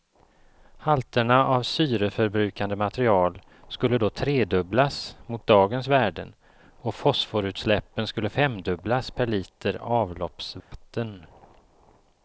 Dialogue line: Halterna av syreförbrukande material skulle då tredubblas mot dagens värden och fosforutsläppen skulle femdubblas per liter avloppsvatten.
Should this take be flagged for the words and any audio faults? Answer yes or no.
yes